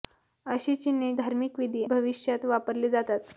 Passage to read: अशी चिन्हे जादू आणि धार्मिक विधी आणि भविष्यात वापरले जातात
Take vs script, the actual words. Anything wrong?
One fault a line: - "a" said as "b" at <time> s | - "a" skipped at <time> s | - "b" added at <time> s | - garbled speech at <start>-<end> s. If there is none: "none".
- "जादू आणि" skipped at 1.1 s
- "आणि" skipped at 1.8 s